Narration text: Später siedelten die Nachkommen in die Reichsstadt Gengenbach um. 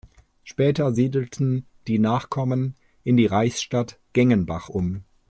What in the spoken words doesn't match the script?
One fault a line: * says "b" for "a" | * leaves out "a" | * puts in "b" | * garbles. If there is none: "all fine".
all fine